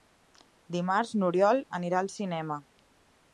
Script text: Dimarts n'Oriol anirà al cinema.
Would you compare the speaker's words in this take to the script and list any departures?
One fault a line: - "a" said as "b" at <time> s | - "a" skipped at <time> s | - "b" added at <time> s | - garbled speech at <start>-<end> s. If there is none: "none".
none